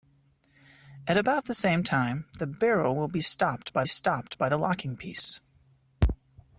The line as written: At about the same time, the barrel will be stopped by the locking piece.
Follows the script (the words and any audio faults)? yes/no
no